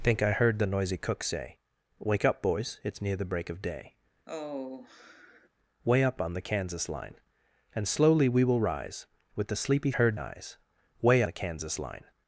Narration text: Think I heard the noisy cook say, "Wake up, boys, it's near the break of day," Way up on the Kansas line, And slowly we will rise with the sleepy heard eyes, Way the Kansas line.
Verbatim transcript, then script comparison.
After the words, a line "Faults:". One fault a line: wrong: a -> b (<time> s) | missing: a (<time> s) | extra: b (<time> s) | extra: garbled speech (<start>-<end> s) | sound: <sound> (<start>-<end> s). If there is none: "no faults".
Think I heard the noisy cook say, "Wake up, boys, it's near the break of day," Way up on the Kansas line, And slowly we will rise with the sleepy heard eyes, Way the Kansas line.
Faults:
sound: sigh (4.3-5.5 s)